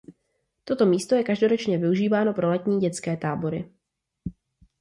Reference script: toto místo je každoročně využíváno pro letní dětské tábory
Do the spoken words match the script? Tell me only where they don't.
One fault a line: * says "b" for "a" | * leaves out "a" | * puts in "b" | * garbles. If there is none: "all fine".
all fine